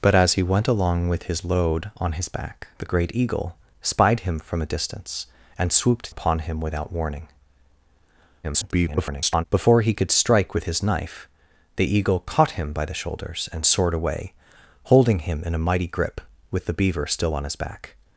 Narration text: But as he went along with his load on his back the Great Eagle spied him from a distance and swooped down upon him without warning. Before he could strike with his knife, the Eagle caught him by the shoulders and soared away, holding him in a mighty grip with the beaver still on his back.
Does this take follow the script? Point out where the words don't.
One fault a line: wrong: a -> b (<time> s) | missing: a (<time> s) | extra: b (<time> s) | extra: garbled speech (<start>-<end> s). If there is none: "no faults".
missing: down (6.2 s)
extra: garbled speech (8.4-9.4 s)